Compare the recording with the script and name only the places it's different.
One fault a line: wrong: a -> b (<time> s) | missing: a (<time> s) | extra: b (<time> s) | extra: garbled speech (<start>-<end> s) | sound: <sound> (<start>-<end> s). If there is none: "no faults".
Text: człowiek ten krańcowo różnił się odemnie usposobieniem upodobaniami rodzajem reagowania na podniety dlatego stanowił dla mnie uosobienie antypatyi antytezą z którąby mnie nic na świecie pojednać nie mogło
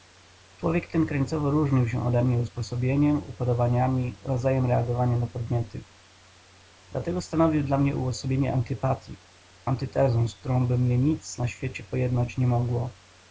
no faults